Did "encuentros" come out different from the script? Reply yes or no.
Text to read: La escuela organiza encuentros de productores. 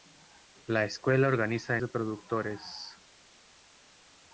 yes